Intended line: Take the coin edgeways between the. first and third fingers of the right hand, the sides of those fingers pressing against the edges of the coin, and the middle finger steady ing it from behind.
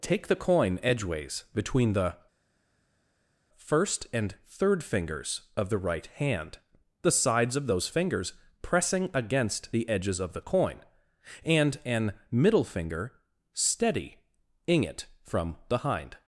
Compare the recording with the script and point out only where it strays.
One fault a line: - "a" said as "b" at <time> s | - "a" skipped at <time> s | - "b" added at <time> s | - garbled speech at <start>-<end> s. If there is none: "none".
- "the" said as "an" at 11.8 s